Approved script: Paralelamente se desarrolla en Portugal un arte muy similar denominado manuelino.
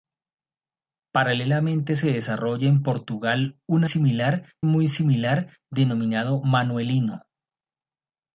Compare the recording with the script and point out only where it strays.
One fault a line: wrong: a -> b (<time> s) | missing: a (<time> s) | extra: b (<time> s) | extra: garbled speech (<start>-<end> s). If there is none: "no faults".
wrong: arte -> similar (3.8 s)